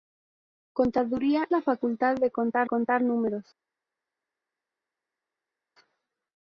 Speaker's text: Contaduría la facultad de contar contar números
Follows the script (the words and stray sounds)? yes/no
yes